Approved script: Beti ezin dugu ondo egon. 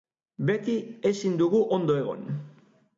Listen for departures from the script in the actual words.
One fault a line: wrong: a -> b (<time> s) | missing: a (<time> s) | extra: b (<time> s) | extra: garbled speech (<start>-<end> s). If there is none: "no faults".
no faults